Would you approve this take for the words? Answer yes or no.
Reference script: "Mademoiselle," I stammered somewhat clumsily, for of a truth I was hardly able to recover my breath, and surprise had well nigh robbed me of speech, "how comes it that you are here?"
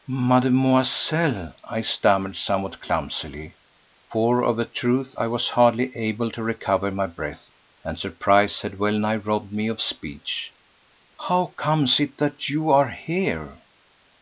yes